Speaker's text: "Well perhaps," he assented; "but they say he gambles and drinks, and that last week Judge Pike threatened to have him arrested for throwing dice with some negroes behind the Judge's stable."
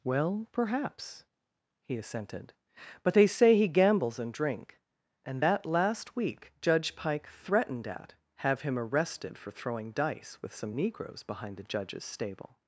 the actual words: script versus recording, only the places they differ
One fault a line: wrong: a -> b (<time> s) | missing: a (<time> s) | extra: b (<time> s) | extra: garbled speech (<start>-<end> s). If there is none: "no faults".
wrong: drinks -> drink (4.3 s)
wrong: to -> at (7.9 s)